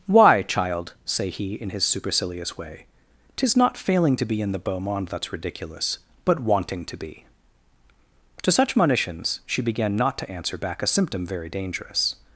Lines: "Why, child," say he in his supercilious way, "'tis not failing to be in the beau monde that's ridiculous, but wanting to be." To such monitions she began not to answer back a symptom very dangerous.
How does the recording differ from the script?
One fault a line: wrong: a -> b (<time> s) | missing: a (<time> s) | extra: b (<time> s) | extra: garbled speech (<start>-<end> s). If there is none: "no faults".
no faults